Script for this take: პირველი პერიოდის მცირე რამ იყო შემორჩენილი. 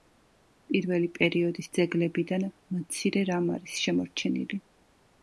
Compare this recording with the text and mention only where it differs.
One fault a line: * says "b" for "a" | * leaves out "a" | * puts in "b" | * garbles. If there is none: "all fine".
* puts in "ძეგლებიდან"
* says "არის" for "იყო"